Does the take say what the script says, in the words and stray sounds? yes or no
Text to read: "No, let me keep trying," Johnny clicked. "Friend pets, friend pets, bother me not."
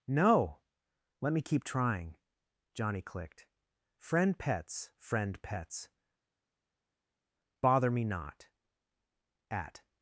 no